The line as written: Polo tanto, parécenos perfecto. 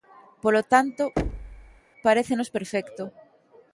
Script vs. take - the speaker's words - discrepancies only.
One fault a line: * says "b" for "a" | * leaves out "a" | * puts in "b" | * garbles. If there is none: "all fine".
all fine